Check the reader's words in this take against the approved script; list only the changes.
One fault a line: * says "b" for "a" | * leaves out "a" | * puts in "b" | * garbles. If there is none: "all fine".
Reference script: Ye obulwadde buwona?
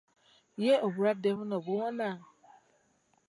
* puts in "buno"